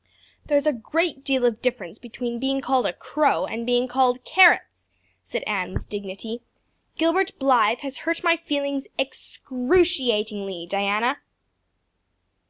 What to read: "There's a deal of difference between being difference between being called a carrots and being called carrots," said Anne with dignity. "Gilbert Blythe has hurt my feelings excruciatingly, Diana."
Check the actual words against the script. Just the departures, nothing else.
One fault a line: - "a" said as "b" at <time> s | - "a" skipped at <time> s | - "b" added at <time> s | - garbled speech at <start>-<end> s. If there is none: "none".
- "great" added at 0.7 s
- "difference between being" skipped at 2.6 s
- "carrots" said as "crow" at 2.9 s